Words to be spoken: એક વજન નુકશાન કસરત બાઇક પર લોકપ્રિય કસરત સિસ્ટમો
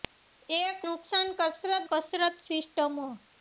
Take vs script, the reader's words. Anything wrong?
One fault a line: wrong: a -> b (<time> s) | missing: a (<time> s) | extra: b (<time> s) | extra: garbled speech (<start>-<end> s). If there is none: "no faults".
missing: વજન (0.8 s)
missing: બાઇક પર લોકપ્રિય (1.8 s)